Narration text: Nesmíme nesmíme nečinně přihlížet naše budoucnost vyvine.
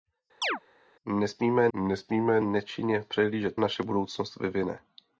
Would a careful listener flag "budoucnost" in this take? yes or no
no